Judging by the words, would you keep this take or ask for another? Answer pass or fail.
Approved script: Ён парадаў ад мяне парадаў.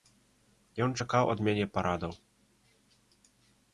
fail